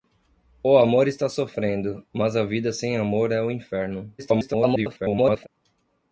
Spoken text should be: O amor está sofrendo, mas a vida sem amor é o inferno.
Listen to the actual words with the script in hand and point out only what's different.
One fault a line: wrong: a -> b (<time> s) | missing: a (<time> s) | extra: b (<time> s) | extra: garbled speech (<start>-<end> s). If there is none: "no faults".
extra: garbled speech (4.2-5.5 s)